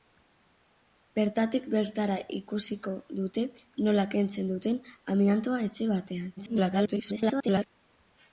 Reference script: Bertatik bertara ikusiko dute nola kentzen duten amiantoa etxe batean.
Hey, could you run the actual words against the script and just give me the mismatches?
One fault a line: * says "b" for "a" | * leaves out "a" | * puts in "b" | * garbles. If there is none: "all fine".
* garbles